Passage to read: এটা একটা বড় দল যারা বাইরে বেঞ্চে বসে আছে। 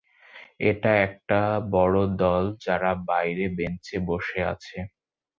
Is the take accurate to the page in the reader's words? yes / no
yes